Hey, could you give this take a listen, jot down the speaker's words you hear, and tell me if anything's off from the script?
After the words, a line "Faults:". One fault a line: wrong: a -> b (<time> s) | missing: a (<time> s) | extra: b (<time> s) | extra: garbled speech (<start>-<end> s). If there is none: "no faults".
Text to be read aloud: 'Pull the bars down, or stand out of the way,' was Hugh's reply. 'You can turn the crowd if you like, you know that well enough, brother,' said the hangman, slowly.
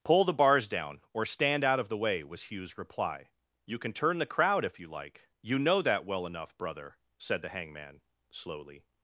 'Pull the bars down, or stand out of the way,' was Hugh's reply. 'You can turn the crowd if you like, you know that well enough, brother,' said the hangman, slowly.
Faults:
no faults